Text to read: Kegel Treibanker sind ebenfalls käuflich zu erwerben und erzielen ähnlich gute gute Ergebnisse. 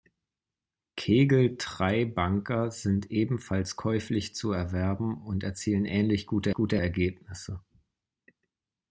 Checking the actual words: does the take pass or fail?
pass